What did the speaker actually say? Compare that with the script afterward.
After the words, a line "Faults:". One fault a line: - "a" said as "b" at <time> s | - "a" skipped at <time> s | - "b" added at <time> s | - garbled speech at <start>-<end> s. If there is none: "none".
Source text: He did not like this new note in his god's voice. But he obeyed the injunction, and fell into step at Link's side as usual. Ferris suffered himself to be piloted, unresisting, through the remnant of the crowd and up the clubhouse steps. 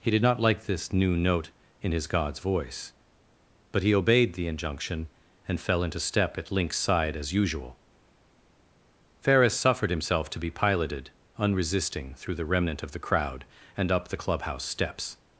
He did not like this new note in his god's voice. But he obeyed the injunction, and fell into step at Link's side as usual. Ferris suffered himself to be piloted, unresisting, through the remnant of the crowd and up the clubhouse steps.
Faults:
none